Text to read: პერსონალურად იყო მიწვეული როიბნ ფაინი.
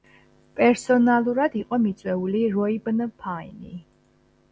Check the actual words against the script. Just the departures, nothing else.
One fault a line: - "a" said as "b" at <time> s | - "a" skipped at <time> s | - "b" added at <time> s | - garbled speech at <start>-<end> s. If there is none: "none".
none